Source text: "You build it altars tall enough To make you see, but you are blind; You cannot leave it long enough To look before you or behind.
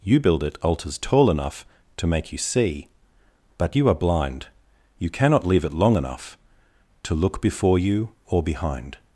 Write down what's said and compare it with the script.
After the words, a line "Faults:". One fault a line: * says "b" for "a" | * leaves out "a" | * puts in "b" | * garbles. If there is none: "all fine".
"You build it altars tall enough To make you see, but you are blind; You cannot leave it long enough To look before you or behind.
Faults:
all fine